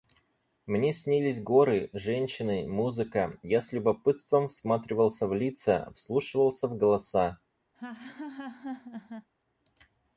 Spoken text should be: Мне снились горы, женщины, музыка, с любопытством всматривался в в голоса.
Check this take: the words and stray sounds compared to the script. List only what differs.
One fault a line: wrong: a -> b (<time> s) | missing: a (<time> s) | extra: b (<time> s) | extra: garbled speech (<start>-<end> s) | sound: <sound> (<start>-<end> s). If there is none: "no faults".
extra: я (3.4 s)
extra: лица вслушивался (5.3 s)
sound: laugh (7.7-9.3 s)